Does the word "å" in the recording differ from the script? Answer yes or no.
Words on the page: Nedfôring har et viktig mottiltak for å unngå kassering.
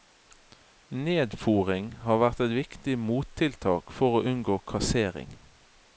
no